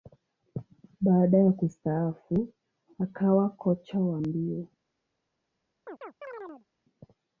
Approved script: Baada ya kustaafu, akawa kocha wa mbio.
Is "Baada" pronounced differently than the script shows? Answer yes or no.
no